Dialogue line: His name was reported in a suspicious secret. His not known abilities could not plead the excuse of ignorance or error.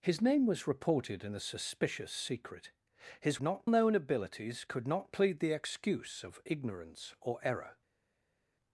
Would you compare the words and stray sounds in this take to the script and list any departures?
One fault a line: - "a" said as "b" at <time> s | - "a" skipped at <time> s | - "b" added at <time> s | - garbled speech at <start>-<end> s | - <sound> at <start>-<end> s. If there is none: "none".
none